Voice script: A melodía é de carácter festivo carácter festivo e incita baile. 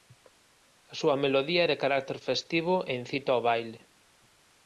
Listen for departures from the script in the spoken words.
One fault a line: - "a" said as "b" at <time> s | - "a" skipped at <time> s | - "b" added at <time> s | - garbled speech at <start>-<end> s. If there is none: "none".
- "súa" added at 1.0 s
- "carácter festivo" skipped at 2.8 s
- "ao" added at 3.3 s